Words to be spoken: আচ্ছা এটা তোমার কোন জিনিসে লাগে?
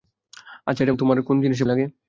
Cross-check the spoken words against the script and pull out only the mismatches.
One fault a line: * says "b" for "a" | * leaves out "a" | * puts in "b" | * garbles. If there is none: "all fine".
all fine